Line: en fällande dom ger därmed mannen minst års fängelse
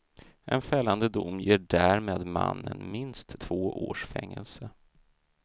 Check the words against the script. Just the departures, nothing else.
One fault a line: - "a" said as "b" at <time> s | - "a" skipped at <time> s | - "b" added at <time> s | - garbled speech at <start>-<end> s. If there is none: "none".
- "två" added at 3.4 s